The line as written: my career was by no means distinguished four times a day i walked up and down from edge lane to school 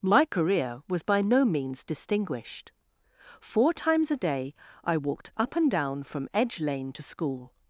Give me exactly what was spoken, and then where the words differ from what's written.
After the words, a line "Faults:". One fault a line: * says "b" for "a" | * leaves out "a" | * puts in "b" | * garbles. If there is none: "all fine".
my career was by no means distinguished four times a day i walked up and down from edge lane to school
Faults:
all fine